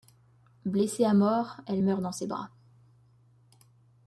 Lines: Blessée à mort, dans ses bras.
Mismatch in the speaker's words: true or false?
true